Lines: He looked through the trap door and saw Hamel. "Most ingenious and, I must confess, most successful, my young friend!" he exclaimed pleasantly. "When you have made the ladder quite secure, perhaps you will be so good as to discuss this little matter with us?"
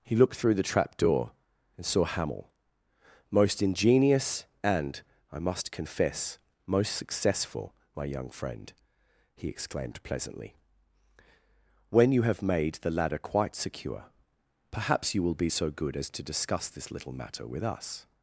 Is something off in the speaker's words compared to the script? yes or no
no